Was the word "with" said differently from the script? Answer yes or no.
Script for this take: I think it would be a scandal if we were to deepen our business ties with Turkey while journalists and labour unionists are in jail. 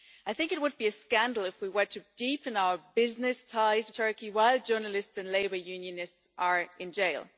yes